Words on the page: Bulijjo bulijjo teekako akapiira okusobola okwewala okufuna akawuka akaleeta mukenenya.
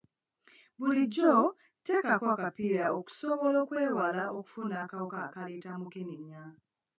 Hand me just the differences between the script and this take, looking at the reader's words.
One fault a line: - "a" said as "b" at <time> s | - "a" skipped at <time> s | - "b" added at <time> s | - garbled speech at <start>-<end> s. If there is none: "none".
- "bulijjo" skipped at 1.3 s